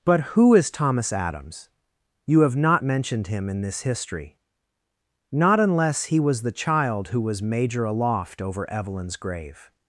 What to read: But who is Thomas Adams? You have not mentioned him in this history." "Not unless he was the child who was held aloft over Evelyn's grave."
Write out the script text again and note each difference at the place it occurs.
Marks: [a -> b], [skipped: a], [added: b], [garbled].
But who is Thomas Adams? You have not mentioned him in this history." "Not unless he was the child who was [held -> major] aloft over Evelyn's grave."